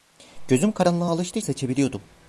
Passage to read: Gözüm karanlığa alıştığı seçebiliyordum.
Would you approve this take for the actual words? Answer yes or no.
yes